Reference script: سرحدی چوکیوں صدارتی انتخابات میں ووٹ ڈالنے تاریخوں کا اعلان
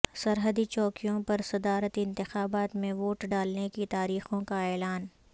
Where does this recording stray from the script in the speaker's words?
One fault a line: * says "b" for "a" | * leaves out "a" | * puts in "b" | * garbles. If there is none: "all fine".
* puts in "پر"
* puts in "کی"